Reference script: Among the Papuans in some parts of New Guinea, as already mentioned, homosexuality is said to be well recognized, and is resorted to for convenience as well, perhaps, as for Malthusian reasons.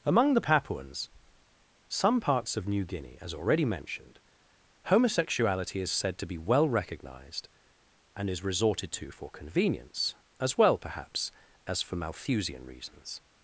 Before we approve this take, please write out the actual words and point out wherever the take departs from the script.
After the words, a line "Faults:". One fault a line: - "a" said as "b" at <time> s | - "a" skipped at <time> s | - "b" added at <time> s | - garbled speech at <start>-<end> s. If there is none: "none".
Among the Papuans some parts of New Guinea, as already mentioned, homosexuality is said to be well recognized, and is resorted to for convenience as well, perhaps, as for Malthusian reasons.
Faults:
- "in" skipped at 1.1 s